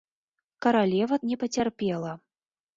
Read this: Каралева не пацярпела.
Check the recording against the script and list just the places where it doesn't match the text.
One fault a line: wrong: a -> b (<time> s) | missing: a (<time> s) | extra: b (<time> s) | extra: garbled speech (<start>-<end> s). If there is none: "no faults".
no faults